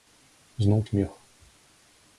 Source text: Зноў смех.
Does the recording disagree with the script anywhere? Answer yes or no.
no